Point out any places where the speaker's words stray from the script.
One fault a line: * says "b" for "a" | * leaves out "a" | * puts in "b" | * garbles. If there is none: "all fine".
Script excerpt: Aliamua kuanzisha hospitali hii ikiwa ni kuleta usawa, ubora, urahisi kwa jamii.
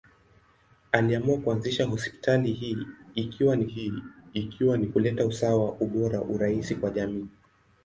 * puts in "hii ikiwa ni"